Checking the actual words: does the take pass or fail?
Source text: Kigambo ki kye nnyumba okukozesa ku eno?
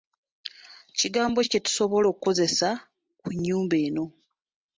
fail